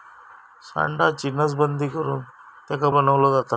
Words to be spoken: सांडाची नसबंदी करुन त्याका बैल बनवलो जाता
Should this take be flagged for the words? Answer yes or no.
yes